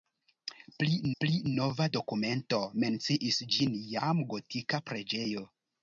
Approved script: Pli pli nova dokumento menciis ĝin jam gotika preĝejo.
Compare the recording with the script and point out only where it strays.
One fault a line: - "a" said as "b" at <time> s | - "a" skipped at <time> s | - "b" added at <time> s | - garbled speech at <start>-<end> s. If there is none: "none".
none